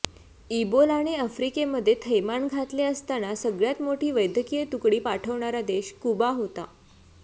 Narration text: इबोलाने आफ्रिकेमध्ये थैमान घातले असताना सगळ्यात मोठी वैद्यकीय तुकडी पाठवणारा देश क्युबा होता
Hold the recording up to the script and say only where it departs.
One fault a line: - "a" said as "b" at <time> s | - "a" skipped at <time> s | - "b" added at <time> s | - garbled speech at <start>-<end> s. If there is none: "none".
none